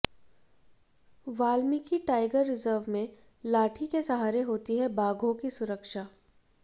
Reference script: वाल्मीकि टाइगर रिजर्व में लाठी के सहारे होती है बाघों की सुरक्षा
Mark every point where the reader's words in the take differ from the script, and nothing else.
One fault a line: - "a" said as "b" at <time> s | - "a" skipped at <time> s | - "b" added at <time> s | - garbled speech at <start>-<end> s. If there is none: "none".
none